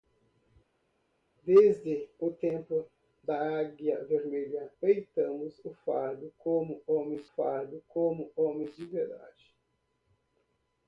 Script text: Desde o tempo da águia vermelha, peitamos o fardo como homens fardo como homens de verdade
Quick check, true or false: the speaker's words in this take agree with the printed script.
true